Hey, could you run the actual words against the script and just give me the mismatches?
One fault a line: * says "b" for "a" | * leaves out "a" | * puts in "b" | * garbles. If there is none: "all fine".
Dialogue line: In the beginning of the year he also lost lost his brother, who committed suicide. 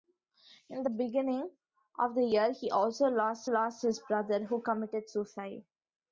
all fine